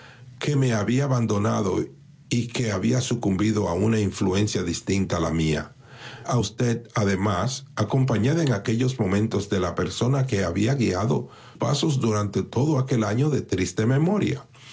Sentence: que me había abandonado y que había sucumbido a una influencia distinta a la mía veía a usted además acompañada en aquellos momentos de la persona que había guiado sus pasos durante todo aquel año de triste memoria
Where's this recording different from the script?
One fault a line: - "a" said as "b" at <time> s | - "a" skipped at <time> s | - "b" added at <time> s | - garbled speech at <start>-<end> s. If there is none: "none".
- "veía" skipped at 5.7 s
- "sus" skipped at 11.3 s